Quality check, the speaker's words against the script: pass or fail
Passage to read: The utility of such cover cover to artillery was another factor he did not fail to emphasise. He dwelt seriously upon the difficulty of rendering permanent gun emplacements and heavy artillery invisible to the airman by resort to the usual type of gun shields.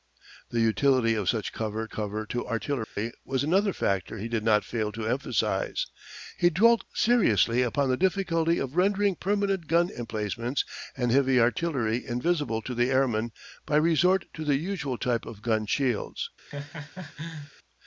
pass